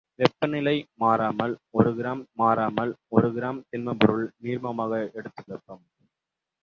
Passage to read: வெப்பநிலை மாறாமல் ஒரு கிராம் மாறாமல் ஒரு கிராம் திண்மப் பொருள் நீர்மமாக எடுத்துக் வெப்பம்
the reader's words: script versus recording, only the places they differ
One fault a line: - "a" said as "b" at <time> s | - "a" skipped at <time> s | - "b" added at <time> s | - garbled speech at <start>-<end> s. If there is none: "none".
none